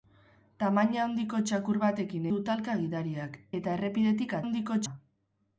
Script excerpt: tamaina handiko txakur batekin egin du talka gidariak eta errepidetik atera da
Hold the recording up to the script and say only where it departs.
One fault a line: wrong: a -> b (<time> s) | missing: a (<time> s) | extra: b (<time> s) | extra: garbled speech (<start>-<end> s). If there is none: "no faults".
missing: egin (2.2 s)
wrong: atera -> handiko (4.4 s)